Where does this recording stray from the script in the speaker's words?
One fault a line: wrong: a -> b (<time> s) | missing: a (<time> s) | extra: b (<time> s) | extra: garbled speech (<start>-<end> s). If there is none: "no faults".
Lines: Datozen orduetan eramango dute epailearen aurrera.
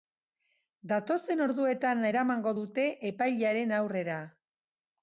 no faults